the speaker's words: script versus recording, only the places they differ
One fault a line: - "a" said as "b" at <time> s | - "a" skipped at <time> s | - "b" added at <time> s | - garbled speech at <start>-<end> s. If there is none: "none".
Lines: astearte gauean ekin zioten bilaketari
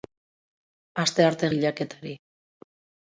- "gauean ekin zioten" skipped at 1.5 s